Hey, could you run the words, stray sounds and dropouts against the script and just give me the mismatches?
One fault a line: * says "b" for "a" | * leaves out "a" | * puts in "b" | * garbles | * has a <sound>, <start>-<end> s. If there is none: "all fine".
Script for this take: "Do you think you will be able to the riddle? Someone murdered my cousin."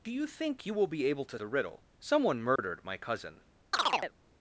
* has a dropout, 2.6-2.6 s
* has a chirp, 3.7-4.1 s